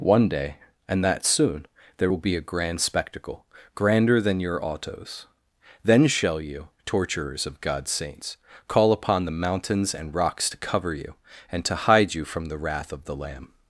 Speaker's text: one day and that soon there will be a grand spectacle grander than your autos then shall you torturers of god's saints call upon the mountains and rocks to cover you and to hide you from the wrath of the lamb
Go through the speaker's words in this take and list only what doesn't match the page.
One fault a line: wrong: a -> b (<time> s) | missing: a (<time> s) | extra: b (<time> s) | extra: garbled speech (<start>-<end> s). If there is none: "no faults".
no faults